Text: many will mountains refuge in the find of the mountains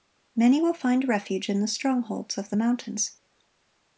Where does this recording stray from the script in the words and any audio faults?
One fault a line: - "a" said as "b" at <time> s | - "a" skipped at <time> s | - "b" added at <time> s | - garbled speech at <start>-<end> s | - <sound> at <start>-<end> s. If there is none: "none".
- "mountains" said as "find" at 0.7 s
- "find" said as "strongholds" at 1.7 s